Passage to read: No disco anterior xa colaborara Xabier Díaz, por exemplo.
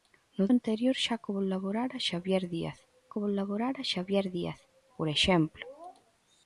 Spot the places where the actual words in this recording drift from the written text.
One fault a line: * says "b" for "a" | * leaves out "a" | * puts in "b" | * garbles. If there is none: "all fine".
* leaves out "disco"
* puts in "colaborara Xabier Díaz"